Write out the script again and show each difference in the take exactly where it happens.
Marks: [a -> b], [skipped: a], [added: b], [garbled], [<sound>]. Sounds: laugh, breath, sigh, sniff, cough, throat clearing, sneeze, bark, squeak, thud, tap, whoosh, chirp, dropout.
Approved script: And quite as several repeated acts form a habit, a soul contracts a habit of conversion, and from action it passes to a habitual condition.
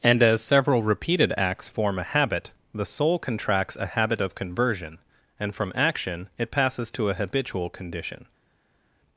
And [skipped: quite] as several repeated acts form a habit, [a -> the] soul contracts a habit of conversion, and from action it passes to a habitual condition.